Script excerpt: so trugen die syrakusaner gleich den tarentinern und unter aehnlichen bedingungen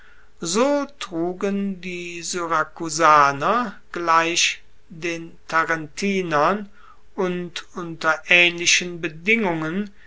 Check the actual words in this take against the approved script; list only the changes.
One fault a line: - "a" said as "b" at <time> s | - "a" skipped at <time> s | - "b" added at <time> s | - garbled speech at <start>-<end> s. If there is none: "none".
none